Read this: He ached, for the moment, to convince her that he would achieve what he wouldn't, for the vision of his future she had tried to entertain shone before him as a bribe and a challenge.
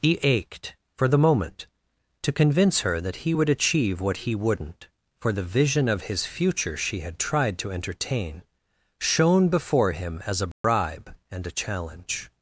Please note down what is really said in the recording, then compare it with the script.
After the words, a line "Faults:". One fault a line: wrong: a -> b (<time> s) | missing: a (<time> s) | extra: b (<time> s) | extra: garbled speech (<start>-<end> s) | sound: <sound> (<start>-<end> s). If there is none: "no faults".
He ached, for the moment, to convince her that he would achieve what he wouldn't, for the vision of his future she had tried to entertain shone before him as a bribe and a challenge.
Faults:
sound: dropout (10.5-10.6 s)